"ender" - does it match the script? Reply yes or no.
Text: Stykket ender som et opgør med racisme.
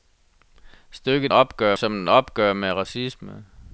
no